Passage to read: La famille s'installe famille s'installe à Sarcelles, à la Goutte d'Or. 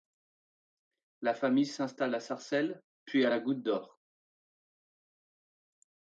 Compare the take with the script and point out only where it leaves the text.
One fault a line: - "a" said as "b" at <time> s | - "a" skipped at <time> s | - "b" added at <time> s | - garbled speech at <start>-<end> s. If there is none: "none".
- "famille s'installe" skipped at 2.1 s
- "puis" added at 3.0 s